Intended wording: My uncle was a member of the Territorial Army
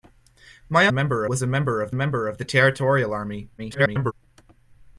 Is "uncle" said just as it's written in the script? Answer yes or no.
no